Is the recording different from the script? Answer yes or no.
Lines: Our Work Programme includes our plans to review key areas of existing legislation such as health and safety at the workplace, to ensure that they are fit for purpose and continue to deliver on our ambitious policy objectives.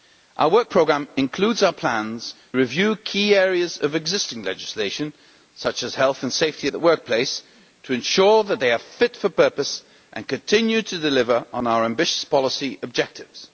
yes